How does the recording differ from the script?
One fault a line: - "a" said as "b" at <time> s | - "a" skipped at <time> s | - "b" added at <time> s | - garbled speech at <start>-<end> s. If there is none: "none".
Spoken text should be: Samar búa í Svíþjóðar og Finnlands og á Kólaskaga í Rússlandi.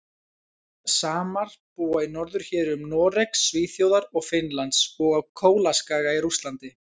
- "norðurhéruðum Noregs" added at 2.1 s